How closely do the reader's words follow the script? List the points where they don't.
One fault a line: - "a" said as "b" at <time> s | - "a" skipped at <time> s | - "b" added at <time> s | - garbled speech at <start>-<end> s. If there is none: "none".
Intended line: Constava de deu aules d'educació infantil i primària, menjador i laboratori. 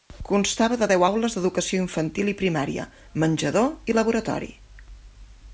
none